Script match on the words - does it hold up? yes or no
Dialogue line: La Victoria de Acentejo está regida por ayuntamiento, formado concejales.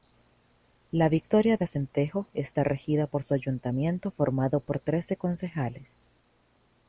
no